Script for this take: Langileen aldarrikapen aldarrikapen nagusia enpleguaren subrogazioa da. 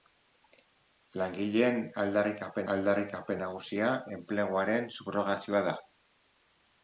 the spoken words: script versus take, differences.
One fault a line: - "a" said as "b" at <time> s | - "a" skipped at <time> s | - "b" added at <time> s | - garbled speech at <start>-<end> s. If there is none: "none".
none